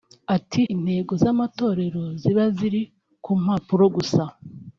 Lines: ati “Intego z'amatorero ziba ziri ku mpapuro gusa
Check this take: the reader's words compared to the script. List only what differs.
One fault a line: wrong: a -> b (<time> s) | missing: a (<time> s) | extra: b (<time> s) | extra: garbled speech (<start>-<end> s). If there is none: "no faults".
no faults